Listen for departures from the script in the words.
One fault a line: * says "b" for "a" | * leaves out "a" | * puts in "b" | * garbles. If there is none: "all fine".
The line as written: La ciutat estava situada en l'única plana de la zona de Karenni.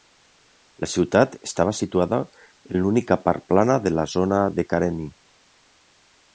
* puts in "part"